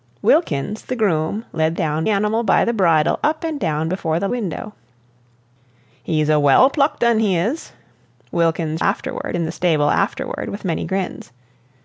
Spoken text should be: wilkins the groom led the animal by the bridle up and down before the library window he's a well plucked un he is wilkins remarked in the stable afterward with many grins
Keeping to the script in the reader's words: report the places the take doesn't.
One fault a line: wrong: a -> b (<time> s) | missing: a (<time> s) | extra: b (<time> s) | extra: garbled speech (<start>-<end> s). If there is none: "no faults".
wrong: the -> down (1.8 s)
missing: library (4.3 s)
wrong: remarked -> afterward (8.8 s)